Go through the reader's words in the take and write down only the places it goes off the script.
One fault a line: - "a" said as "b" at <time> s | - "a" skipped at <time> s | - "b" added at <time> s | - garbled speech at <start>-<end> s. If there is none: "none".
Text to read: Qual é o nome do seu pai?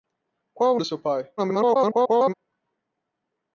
- "nome" skipped at 0.8 s
- garbled speech at 1.4-2.3 s